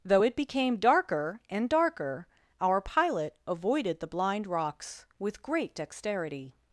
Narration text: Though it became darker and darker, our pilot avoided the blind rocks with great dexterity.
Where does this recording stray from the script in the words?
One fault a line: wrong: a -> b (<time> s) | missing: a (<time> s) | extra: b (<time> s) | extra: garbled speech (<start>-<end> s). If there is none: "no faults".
no faults